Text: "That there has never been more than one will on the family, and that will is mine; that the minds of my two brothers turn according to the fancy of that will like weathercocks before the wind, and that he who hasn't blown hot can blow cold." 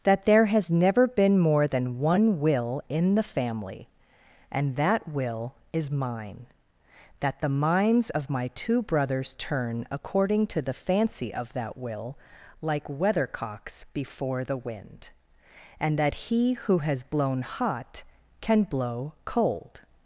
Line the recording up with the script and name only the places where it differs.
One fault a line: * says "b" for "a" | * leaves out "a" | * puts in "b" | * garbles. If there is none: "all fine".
* says "in" for "on"
* says "has" for "hasn't"